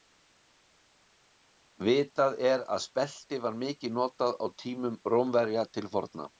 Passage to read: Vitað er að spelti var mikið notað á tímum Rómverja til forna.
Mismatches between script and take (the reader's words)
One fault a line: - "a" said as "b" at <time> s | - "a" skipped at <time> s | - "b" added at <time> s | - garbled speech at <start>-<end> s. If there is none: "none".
none